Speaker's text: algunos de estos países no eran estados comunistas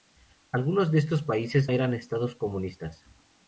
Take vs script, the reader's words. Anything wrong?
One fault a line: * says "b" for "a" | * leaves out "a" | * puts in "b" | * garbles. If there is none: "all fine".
* leaves out "no"